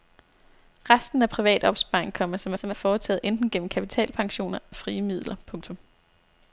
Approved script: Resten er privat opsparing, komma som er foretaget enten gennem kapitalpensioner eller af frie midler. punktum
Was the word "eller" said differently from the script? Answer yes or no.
yes